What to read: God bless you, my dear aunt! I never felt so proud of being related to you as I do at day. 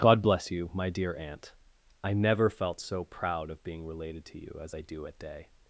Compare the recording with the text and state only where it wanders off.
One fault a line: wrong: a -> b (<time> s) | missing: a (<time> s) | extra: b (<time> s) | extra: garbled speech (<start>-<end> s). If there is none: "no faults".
no faults